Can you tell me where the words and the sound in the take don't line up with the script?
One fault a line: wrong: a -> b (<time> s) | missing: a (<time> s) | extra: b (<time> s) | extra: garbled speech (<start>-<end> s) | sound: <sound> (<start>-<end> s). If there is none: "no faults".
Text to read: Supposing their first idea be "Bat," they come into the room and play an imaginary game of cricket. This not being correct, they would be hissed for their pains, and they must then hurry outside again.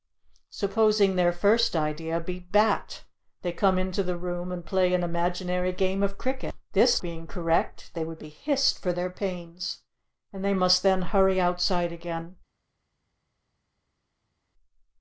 missing: not (7.0 s)